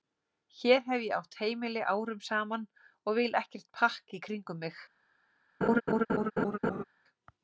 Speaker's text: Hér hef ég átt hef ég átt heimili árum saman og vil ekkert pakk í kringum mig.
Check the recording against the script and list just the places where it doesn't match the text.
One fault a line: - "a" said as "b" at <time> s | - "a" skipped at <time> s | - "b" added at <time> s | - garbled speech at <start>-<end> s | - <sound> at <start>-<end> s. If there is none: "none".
- "hef ég átt" skipped at 1.4 s
- laugh at 5.6-6.8 s